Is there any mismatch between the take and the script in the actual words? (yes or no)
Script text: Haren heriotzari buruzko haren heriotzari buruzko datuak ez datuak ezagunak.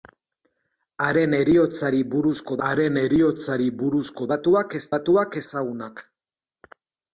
no